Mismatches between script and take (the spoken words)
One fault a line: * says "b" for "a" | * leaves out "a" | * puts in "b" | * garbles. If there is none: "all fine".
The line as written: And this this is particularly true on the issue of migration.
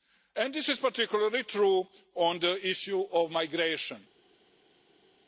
* leaves out "this"